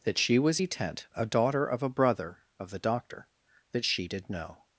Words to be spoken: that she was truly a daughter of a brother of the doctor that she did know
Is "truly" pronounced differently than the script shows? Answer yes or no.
yes